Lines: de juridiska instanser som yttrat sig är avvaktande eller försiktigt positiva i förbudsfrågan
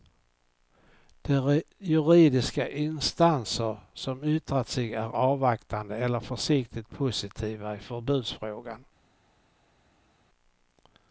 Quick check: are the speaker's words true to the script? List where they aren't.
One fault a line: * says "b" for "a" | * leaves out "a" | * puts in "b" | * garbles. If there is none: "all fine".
all fine